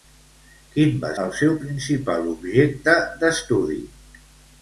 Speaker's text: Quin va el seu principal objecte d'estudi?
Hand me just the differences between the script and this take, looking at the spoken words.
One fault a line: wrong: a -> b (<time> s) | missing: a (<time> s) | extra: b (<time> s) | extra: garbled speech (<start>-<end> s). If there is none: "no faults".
no faults